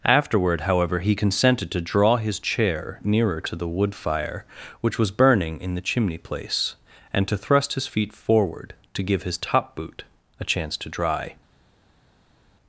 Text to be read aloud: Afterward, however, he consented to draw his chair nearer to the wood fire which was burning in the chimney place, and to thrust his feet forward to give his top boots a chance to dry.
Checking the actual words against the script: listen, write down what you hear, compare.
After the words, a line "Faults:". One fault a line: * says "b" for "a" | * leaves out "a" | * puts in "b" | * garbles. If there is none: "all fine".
Afterward, however, he consented to draw his chair nearer to the wood fire which was burning in the chimney place, and to thrust his feet forward to give his top boot a chance to dry.
Faults:
* says "boot" for "boots"